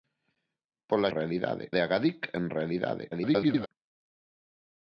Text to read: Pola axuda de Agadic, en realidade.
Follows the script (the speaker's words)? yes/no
no